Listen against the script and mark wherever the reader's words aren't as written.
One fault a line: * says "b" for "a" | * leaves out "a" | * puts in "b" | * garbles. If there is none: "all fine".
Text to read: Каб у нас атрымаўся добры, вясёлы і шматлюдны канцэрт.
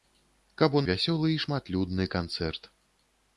* leaves out "нас атрымаўся добры"